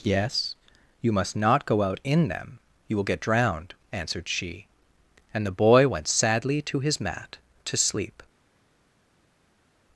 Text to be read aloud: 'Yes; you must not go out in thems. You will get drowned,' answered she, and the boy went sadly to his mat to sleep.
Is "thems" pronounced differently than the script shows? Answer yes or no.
yes